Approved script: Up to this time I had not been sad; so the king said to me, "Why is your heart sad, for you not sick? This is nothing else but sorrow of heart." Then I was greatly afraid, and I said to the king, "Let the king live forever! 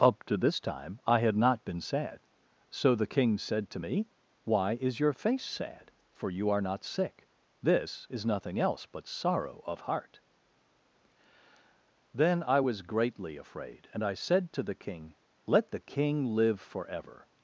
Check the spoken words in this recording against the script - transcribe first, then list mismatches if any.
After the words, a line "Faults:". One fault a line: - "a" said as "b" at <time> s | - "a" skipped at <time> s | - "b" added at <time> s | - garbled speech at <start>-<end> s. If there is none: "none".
Up to this time I had not been sad; so the king said to me, "Why is your face sad, for you are not sick? This is nothing else but sorrow of heart." Then I was greatly afraid, and I said to the king, "Let the king live forever!
Faults:
- "heart" said as "face" at 5.1 s
- "are" added at 6.5 s